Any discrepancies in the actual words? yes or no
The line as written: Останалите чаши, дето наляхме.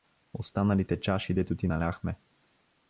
yes